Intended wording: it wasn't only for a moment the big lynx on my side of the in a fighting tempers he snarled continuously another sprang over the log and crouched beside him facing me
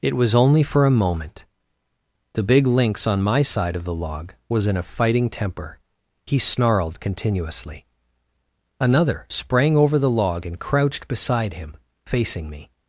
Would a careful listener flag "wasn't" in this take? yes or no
yes